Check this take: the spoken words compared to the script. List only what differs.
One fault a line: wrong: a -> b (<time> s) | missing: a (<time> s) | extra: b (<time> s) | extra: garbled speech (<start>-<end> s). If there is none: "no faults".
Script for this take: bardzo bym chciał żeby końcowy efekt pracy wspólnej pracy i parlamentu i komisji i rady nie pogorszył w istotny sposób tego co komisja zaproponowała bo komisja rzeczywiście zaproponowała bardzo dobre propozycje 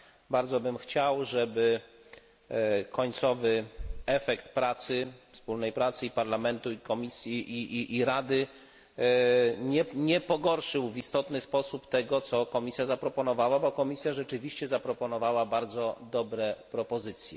no faults